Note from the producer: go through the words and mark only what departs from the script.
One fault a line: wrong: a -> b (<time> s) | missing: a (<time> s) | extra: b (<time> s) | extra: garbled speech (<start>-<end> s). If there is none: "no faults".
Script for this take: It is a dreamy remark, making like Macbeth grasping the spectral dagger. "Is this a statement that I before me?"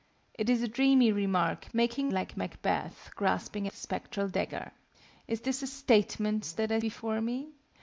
no faults